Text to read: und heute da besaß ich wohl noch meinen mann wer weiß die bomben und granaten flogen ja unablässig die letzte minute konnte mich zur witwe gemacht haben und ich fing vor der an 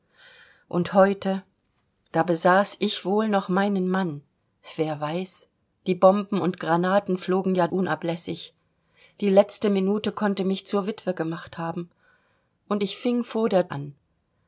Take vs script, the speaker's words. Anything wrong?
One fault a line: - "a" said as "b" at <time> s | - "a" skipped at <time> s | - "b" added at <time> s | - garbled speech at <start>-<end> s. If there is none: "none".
none